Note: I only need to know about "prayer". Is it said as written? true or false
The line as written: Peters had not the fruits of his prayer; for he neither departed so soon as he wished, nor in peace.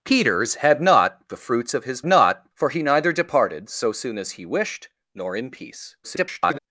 false